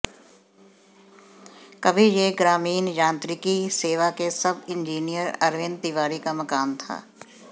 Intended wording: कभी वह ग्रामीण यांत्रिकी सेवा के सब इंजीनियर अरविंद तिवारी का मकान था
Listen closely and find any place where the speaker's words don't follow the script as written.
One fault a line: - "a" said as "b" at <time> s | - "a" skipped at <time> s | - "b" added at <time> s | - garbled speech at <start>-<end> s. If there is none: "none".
- "वह" said as "यह" at 2.0 s